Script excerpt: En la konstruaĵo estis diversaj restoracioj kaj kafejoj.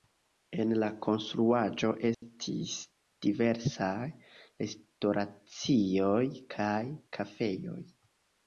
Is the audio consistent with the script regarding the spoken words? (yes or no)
yes